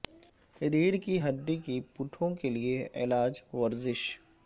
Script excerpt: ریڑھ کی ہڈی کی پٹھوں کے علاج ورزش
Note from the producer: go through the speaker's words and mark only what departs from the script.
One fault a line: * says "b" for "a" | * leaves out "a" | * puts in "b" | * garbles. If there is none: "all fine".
* puts in "لئے"